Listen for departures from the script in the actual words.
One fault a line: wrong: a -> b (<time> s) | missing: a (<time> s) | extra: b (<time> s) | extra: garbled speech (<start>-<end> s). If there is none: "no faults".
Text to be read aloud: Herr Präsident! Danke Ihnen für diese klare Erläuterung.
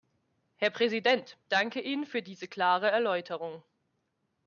no faults